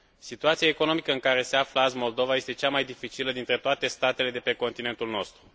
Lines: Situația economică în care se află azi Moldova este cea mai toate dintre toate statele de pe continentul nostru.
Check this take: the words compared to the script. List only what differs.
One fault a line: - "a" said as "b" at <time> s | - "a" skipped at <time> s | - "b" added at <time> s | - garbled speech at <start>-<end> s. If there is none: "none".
- "toate" said as "dificilă" at 2.8 s